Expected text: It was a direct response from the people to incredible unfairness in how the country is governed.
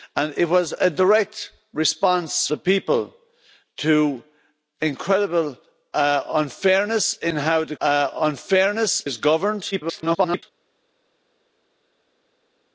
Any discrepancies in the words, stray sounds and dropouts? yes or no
yes